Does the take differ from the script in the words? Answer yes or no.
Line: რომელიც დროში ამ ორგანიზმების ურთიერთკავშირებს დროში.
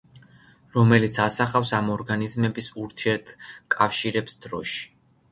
yes